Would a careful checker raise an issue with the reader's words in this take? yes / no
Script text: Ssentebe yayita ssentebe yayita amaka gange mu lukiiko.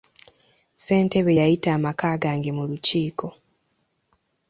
yes